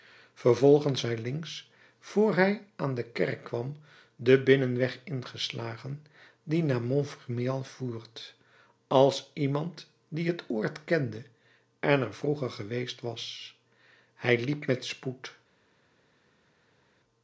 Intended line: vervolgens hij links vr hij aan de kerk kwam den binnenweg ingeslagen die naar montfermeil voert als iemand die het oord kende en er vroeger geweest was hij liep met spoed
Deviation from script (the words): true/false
false